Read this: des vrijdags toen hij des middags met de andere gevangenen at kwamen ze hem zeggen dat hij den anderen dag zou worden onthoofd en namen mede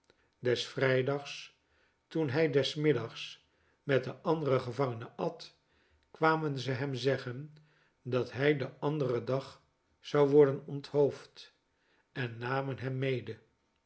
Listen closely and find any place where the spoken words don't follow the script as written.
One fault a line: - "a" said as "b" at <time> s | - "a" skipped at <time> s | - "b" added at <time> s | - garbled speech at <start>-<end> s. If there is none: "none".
- "hem" added at 12.8 s